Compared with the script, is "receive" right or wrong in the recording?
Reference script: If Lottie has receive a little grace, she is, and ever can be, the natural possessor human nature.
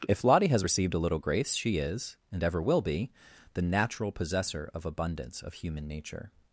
wrong